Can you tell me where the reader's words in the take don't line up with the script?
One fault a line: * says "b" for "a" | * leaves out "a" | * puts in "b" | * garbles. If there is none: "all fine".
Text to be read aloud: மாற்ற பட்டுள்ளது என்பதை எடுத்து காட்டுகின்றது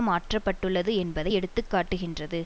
all fine